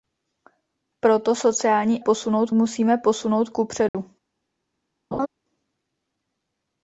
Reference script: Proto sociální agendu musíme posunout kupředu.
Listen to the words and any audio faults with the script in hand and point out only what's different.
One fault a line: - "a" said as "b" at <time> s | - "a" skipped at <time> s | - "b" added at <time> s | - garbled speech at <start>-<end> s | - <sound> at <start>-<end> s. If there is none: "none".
- "agendu" said as "posunout" at 2.0 s
- dropout at 3.9-3.9 s
- laugh at 5.1-5.3 s